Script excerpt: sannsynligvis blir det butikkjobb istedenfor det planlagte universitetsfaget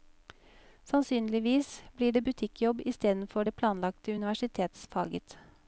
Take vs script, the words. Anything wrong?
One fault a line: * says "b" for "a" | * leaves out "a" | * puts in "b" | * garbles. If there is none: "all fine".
all fine